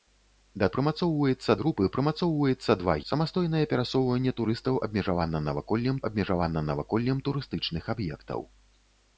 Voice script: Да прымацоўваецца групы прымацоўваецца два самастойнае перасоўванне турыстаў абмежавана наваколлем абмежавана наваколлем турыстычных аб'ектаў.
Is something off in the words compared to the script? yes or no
no